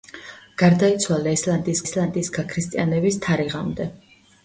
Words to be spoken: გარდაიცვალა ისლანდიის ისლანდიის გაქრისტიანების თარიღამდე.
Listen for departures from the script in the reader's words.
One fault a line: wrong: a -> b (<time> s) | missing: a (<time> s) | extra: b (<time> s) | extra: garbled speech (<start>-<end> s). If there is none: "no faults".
no faults